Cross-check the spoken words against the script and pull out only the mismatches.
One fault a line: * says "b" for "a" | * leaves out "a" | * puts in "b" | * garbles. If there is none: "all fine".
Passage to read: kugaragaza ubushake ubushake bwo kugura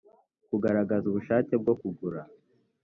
* leaves out "ubushake"